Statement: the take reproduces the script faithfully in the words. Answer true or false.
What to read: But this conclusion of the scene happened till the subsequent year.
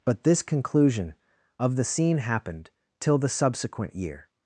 true